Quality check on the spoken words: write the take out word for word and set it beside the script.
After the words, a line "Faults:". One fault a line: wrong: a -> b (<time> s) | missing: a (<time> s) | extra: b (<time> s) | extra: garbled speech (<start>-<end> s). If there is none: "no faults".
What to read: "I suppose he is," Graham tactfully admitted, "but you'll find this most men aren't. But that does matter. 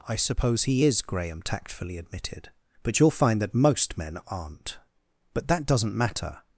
"I suppose he is," Graham tactfully admitted, "but you'll find that most men aren't. But that doesn't matter.
Faults:
wrong: this -> that (3.4 s)
wrong: does -> doesn't (5.6 s)